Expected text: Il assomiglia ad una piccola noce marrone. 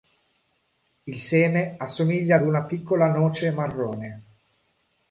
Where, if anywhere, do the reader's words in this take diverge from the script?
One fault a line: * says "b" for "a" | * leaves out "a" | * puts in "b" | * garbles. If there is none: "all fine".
* puts in "seme"